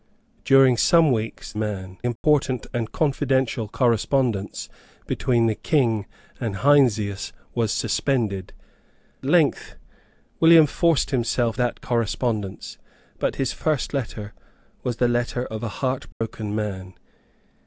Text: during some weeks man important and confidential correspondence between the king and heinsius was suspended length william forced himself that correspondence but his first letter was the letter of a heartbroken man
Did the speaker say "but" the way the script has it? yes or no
yes